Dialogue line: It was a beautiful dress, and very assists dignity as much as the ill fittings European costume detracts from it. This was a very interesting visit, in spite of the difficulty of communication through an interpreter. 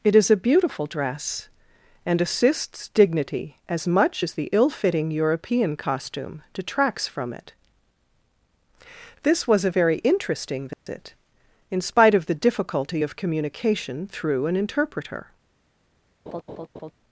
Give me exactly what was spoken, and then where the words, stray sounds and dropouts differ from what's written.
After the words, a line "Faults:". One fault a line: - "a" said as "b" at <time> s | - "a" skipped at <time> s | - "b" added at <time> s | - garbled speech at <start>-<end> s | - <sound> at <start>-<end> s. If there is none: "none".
It is a beautiful dress, and assists dignity as much as the ill fitting European costume detracts from it. This was a very interesting visit, in spite of the difficulty of communication through an interpreter.
Faults:
- "was" said as "is" at 0.1 s
- "very" skipped at 2.2 s
- "fittings" said as "fitting" at 4.7 s
- dropout at 10.7-10.9 s
- laugh at 16.3-16.9 s